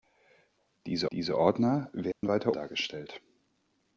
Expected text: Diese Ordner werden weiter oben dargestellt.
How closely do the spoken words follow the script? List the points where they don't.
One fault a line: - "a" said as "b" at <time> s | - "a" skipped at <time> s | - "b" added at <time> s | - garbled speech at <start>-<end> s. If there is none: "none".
- "diese" added at 1.1 s
- "oben" skipped at 2.5 s